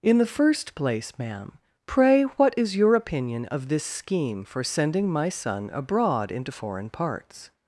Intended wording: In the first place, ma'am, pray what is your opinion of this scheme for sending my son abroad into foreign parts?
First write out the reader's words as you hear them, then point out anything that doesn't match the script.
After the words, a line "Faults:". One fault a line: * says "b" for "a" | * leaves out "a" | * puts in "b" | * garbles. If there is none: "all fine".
In the first place, ma'am, pray what is your opinion of this scheme for sending my son abroad into foreign parts?
Faults:
all fine